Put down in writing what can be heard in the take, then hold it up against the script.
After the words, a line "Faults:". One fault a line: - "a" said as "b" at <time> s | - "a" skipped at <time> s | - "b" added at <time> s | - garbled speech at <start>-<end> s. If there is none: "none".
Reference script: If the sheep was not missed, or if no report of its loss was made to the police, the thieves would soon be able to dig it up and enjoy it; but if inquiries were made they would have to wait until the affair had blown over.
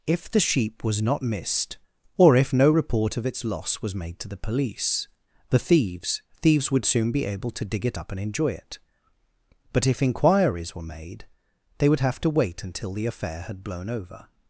If the sheep was not missed, or if no report of its loss was made to the police, the thieves thieves would soon be able to dig it up and enjoy it; but if inquiries were made they would have to wait until the affair had blown over.
Faults:
- "thieves" added at 6.4 s